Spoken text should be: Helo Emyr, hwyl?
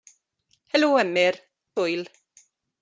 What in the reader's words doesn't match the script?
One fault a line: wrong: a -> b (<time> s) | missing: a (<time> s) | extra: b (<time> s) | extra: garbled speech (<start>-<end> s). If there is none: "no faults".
no faults